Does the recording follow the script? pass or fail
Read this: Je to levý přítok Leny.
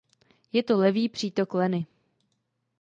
pass